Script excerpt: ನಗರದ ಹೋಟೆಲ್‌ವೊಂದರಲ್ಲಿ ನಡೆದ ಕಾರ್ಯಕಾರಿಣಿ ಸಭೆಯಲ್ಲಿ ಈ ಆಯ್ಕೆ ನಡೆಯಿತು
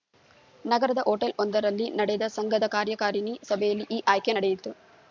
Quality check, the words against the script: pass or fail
fail